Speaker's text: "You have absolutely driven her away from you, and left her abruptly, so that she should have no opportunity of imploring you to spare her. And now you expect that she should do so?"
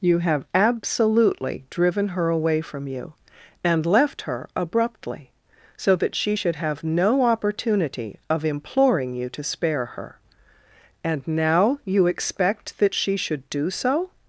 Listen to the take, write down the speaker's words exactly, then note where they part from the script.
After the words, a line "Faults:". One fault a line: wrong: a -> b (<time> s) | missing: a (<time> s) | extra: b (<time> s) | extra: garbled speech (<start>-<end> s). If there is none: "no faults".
"You have absolutely driven her away from you, and left her abruptly, so that she should have no opportunity of imploring you to spare her. And now you expect that she should do so?"
Faults:
no faults